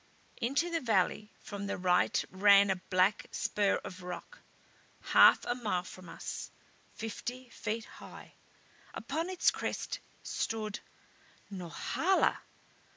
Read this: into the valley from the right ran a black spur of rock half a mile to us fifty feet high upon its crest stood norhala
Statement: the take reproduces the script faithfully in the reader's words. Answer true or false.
false